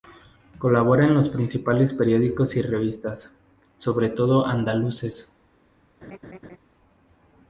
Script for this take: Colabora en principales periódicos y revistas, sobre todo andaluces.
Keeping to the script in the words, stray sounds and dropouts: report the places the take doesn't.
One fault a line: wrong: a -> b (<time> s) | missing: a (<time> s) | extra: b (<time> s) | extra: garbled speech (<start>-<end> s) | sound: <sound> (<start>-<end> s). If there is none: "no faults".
extra: los (1.1 s)
sound: laugh (6.0-6.6 s)